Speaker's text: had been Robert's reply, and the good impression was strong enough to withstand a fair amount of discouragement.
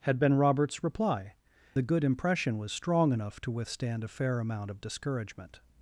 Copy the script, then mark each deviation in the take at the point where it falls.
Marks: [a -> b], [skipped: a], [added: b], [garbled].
had been Robert's reply, [skipped: and] the good impression was strong enough to withstand a fair amount of discouragement.